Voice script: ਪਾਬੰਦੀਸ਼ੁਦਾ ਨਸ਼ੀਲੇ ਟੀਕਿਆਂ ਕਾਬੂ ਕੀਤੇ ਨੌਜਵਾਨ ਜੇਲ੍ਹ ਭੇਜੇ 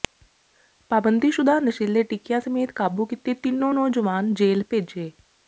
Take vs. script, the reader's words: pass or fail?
fail